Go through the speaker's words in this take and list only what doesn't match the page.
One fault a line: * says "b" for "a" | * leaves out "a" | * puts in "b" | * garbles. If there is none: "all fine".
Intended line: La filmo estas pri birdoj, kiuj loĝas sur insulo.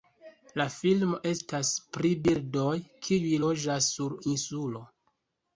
all fine